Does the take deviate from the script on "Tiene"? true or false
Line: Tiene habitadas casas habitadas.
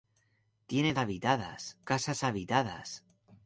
false